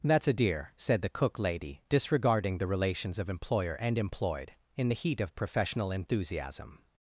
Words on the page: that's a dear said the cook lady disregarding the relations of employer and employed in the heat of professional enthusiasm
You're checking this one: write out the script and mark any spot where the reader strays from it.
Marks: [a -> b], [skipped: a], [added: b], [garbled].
that's a dear said the cook lady disregarding the relations of employer and employed in the heat of professional enthusiasm